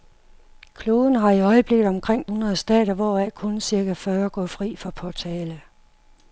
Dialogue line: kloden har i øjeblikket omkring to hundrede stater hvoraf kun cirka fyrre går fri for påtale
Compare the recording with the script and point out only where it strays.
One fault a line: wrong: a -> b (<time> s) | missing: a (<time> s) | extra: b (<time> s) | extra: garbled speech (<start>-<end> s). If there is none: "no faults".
missing: to (2.2 s)